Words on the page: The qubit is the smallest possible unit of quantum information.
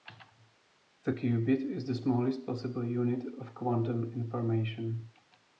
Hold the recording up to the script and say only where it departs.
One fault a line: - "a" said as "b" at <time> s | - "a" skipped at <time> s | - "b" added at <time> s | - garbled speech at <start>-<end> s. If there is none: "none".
none